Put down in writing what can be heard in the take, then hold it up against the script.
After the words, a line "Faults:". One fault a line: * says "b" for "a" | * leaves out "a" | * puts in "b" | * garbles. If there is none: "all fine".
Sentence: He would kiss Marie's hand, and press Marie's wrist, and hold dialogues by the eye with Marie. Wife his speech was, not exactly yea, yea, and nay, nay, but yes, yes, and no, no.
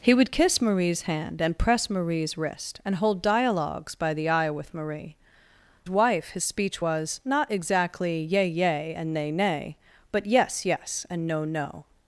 He would kiss Marie's hand, and press Marie's wrist, and hold dialogues by the eye with Marie. Wife his speech was, not exactly yea, yea, and nay, nay, but yes, yes, and no, no.
Faults:
all fine